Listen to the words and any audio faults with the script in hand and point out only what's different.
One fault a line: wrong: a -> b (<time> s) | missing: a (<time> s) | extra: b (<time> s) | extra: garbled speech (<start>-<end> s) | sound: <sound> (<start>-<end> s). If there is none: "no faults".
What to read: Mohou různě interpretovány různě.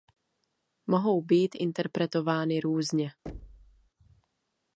wrong: různě -> být (1.2 s)
sound: thud (3.3-3.9 s)